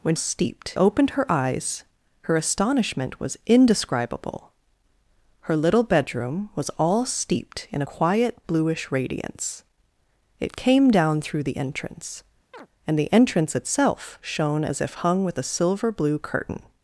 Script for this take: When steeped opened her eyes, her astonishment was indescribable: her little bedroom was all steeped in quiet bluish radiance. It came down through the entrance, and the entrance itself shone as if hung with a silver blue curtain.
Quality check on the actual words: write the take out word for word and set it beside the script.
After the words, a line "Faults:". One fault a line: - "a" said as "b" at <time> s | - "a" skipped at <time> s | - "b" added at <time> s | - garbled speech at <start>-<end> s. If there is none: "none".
When steeped opened her eyes, her astonishment was indescribable: her little bedroom was all steeped in quiet bluish radiance. It came down through the entrance, and the entrance itself shone as if hung with a silver blue curtain.
Faults:
none